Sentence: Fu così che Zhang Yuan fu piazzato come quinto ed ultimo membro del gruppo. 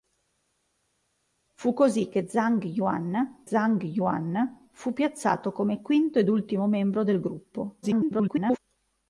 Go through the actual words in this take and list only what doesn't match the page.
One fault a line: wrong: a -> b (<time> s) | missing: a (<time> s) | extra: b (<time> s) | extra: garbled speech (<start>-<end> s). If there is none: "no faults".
extra: Zhang Yuan (3.4 s)
extra: garbled speech (7.8-8.6 s)